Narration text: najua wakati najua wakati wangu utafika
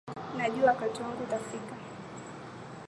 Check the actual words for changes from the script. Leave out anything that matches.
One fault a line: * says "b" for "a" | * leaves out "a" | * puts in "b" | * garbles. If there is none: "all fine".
* leaves out "najua wakati"